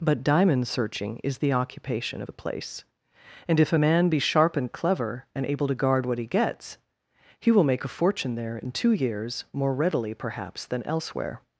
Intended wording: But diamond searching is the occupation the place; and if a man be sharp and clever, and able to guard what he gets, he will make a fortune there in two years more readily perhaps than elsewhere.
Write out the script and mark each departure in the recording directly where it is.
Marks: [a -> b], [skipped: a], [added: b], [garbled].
But diamond searching is the occupation the place; and if a man be sharp and clever, and able to guard what he gets, he will make a fortune there in two years more readily perhaps than elsewhere.